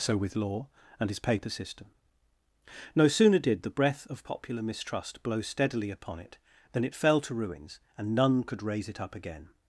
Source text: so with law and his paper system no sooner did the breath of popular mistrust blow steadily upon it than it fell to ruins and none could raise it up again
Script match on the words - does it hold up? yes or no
yes